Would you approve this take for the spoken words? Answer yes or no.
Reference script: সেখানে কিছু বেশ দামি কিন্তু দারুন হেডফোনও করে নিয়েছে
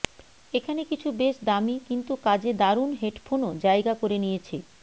no